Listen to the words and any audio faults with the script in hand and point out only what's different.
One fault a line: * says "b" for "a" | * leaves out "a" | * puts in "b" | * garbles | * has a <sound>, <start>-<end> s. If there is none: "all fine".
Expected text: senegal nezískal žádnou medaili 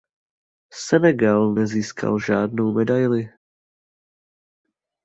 all fine